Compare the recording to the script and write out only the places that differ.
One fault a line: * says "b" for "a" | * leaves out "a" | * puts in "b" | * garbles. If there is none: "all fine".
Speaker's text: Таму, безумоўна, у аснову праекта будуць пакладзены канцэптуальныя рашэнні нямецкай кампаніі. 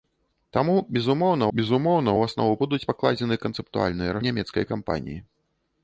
* puts in "безумоўна"
* leaves out "праекта"
* leaves out "рашэнні"